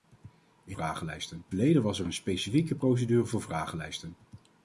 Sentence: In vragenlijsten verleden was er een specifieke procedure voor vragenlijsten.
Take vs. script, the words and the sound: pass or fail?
pass